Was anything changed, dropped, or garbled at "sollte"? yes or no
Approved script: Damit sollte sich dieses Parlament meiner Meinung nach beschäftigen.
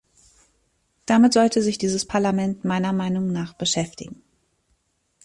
no